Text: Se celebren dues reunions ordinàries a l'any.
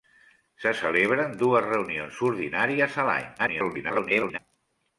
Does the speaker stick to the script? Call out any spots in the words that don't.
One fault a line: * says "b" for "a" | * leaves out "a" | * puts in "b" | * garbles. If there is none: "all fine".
* garbles